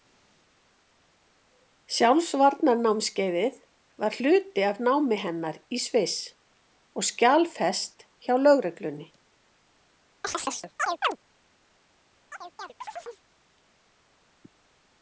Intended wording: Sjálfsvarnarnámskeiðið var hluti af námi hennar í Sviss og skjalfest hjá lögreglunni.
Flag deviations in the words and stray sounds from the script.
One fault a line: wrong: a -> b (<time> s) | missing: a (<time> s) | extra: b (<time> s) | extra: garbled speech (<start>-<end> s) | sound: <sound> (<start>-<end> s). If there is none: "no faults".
sound: chirp (10.2-11.2 s)
sound: chirp (12.3-13.2 s)